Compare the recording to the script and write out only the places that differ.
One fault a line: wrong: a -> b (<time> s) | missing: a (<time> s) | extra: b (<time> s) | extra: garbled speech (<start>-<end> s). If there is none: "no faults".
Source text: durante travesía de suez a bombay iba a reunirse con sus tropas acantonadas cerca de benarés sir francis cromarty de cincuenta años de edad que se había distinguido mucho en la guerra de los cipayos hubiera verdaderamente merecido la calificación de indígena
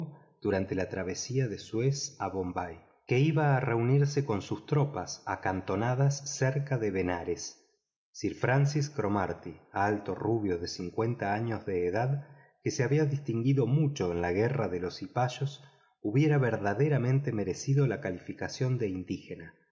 extra: la (0.8 s)
extra: que (3.1 s)
extra: alto rubio (9.7 s)